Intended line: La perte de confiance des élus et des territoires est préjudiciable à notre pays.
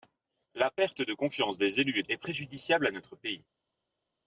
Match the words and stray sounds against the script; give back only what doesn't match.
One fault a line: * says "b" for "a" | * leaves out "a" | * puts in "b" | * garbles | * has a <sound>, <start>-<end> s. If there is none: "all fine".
* leaves out "des territoires"